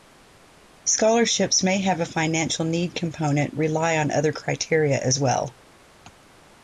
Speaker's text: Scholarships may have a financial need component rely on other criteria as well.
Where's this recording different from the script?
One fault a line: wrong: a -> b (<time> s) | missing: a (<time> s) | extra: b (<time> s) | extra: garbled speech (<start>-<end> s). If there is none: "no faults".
no faults